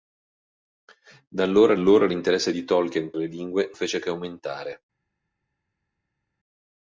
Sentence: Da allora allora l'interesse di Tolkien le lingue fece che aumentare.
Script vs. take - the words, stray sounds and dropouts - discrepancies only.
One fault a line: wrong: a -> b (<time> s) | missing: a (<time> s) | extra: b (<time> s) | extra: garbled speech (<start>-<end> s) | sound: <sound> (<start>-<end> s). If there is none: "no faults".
no faults